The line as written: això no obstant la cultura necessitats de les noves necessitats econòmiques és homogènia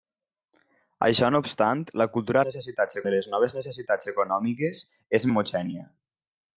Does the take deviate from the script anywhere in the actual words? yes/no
no